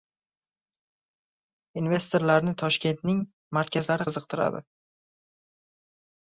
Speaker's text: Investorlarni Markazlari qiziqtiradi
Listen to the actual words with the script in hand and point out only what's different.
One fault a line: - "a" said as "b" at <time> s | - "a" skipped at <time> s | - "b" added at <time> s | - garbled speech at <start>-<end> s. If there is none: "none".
- "Toshkentning" added at 2.6 s